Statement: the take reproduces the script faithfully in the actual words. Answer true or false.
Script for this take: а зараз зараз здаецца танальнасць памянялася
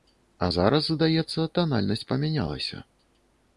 false